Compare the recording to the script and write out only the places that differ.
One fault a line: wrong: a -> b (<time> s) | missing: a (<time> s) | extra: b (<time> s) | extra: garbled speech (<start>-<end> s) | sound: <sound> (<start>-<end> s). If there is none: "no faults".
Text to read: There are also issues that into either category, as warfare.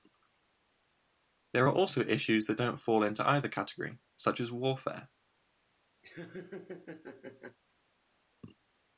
extra: don't fall (2.6 s)
extra: such (4.2 s)
sound: laugh (6.0-7.6 s)